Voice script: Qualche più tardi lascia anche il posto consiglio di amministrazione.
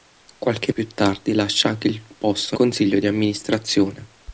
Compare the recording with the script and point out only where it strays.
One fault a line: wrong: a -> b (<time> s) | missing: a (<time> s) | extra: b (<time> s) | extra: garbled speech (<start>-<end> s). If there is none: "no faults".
no faults